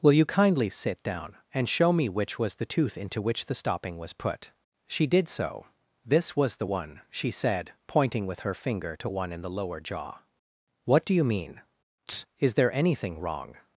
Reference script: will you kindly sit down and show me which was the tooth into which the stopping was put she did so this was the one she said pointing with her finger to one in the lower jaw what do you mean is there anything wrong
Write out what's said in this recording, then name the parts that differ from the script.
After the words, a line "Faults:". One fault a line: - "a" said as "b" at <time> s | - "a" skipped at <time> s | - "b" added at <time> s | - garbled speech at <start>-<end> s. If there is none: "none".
will you kindly sit down and show me which was the tooth into which the stopping was put she did so this was the one she said pointing with her finger to one in the lower jaw what do you mean is there anything wrong
Faults:
none